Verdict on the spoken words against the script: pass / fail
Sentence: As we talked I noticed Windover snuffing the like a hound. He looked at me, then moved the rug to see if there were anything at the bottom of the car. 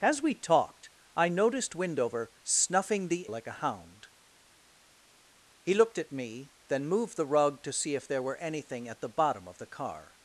pass